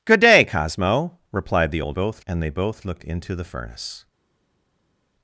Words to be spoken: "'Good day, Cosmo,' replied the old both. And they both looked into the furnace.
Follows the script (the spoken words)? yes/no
yes